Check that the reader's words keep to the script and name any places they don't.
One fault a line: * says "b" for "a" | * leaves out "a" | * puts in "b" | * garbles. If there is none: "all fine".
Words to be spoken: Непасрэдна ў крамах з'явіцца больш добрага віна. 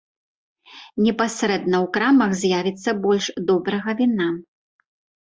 all fine